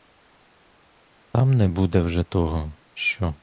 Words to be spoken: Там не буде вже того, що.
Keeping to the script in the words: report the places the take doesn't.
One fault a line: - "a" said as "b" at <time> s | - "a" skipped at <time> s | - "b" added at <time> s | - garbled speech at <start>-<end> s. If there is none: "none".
none